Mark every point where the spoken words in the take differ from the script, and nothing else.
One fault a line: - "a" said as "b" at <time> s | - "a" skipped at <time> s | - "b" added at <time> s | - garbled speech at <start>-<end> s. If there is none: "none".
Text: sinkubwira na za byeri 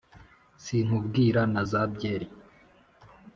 none